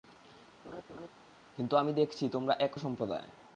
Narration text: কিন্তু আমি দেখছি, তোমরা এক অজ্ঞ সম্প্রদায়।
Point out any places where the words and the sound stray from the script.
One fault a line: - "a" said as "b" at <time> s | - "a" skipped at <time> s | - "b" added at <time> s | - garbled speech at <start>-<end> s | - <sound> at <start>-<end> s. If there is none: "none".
- laugh at 0.6-1.1 s
- "অজ্ঞ" skipped at 2.7 s